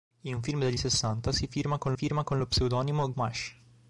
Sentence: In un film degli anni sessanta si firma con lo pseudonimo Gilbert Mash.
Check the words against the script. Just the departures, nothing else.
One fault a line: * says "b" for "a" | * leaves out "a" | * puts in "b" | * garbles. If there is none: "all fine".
* leaves out "anni"
* puts in "firma con"
* leaves out "Gilbert"